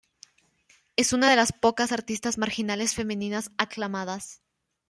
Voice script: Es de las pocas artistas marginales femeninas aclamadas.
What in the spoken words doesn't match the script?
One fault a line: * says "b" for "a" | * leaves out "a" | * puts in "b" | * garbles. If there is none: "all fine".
* puts in "una"